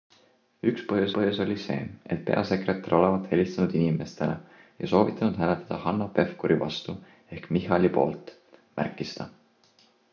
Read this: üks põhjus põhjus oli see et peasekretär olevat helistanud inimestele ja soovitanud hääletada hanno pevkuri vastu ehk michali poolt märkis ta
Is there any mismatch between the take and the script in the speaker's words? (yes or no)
no